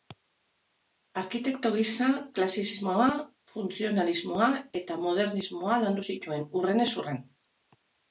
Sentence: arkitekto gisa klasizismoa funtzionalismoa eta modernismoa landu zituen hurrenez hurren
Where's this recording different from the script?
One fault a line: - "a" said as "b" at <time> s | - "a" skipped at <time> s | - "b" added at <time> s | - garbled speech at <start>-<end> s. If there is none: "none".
none